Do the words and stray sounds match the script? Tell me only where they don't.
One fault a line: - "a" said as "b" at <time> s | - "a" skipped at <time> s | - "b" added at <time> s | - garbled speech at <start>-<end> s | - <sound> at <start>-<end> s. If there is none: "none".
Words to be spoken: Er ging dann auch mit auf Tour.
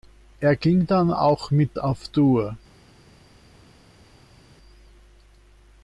none